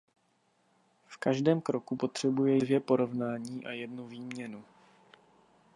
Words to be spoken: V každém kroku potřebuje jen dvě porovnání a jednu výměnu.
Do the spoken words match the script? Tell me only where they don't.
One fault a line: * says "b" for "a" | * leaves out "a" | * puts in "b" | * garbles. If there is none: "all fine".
* leaves out "jen"